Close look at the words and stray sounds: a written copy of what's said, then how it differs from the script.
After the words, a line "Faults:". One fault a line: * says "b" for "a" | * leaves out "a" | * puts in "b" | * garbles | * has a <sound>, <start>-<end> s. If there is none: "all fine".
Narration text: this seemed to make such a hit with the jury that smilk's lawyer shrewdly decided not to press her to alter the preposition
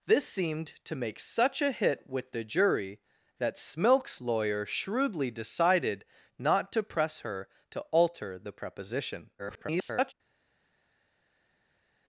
this seemed to make such a hit with the jury that smilk's lawyer shrewdly decided not to press her to alter the preposition [garbled]
Faults:
* garbles